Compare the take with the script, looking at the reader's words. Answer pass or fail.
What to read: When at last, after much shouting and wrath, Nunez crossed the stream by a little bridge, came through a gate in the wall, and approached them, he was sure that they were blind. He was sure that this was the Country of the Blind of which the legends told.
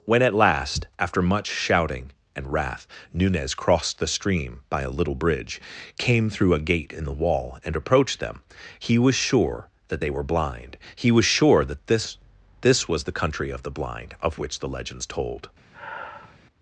fail